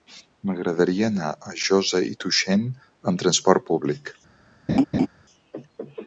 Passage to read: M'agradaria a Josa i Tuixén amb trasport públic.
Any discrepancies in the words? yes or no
yes